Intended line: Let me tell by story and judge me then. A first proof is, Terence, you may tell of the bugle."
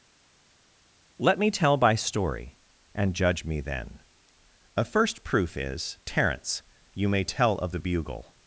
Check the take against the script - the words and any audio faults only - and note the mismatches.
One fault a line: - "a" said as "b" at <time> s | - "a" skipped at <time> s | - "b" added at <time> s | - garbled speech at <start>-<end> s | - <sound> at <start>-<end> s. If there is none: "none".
none